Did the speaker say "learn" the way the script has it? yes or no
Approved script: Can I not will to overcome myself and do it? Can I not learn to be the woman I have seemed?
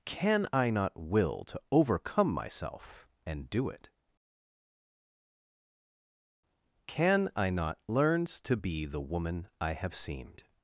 no